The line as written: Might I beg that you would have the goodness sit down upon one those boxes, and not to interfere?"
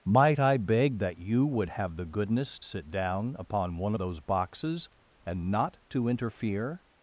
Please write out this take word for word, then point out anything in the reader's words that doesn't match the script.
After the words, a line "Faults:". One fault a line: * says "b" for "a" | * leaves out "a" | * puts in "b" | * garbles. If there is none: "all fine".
Might I beg that you would have the goodness sit down upon one those boxes, and not to interfere?"
Faults:
all fine